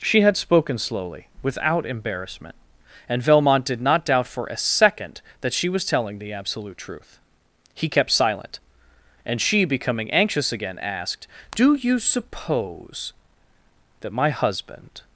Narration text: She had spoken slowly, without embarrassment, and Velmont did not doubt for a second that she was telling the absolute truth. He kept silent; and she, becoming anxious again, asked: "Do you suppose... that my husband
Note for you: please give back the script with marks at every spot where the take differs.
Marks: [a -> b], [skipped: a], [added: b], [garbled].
She had spoken slowly, without embarrassment, and Velmont did not doubt for a second that she was telling the absolute truth. He kept silent; and she, becoming anxious again, asked: "Do you suppose... that my husband